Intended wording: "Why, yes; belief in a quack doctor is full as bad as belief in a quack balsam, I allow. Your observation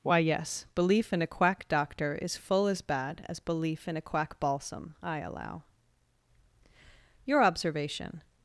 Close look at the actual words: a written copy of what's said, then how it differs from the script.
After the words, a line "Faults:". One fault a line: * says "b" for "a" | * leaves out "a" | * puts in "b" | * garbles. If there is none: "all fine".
"Why, yes; belief in a quack doctor is full as bad as belief in a quack balsam, I allow. Your observation
Faults:
all fine